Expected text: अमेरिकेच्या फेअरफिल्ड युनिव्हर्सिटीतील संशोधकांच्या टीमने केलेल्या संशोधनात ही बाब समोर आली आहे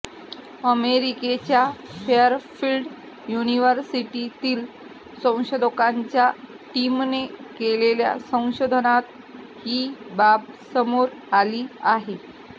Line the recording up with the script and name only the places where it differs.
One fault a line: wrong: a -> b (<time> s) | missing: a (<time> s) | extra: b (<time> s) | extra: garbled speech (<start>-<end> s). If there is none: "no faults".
no faults